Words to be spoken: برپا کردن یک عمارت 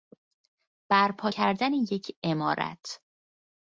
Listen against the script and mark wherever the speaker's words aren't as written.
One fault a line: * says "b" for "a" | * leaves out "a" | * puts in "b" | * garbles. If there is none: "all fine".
all fine